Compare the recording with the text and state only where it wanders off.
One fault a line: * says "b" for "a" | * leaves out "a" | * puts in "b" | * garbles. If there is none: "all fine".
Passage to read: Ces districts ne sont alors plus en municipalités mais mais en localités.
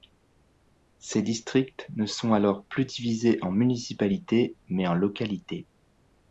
* puts in "divisés"
* leaves out "mais"